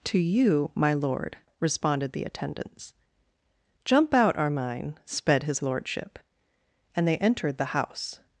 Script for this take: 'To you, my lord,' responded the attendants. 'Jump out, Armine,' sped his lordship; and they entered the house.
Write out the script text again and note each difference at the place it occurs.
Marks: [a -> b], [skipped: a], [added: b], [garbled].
'To you, my lord,' responded the attendants. 'Jump out, Armine,' sped his lordship; and they entered the house.